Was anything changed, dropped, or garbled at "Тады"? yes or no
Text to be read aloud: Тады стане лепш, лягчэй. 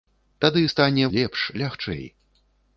no